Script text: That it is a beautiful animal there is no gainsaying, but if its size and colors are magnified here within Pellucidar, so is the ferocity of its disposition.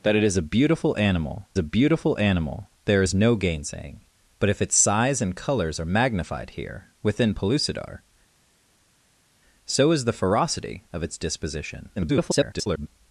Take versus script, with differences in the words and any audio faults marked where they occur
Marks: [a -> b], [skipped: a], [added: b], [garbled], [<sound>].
That it is a beautiful animal [added: a beautiful animal] there is no gainsaying, but if its size and colors are magnified here within Pellucidar, so is the ferocity of its disposition. [garbled]